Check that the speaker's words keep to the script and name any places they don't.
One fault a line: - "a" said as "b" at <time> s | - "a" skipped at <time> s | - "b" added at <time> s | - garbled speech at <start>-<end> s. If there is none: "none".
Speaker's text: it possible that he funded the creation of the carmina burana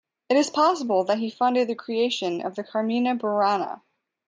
- "is" added at 0.4 s